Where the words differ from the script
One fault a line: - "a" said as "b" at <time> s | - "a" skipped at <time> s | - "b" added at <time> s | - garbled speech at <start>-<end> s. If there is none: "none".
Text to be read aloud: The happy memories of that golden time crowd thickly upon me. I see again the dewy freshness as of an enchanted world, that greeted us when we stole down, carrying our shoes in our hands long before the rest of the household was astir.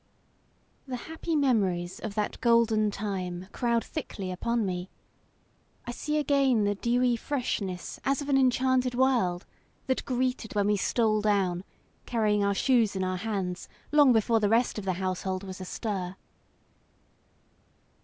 - "us" skipped at 10.6 s